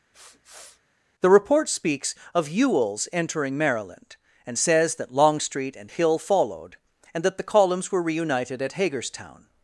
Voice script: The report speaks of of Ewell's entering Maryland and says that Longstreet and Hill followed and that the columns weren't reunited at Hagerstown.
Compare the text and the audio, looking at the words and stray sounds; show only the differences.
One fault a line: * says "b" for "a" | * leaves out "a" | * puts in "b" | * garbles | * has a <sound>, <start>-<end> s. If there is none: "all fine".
* has a sniff, 0.1-0.8 s
* leaves out "of"
* says "were" for "weren't"